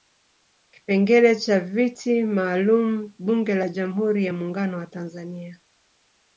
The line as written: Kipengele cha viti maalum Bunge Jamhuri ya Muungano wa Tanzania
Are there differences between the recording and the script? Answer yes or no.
yes